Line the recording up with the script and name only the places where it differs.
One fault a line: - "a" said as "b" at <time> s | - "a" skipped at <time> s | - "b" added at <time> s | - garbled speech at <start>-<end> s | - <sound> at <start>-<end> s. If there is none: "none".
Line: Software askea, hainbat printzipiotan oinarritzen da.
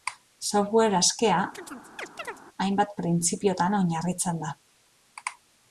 - chirp at 1.5-2.4 s